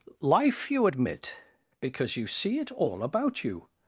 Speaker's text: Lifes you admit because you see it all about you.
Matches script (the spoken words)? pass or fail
fail